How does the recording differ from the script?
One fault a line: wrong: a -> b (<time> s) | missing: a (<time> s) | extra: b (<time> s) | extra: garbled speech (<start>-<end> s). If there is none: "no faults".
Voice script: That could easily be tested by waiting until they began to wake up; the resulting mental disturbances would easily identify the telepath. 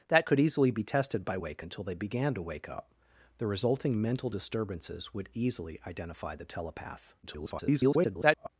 wrong: waiting -> wake (1.4 s)
extra: garbled speech (7.2-8.5 s)